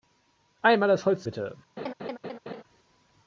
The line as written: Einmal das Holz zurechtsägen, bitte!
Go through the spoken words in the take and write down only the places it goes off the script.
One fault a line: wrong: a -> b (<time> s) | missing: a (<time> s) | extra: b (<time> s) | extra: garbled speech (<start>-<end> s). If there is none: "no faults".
missing: zurechtsägen (1.3 s)